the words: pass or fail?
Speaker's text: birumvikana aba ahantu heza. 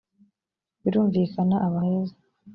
fail